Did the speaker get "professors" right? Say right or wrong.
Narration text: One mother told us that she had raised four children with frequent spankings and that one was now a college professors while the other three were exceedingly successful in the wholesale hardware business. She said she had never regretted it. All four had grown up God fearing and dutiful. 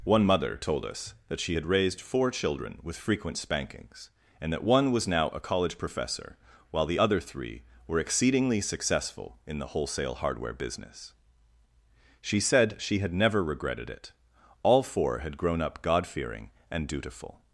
wrong